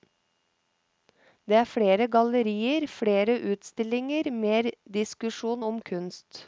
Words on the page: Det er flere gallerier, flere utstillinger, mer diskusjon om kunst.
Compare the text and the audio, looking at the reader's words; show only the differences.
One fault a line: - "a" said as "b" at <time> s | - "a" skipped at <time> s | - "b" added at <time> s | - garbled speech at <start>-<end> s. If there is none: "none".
none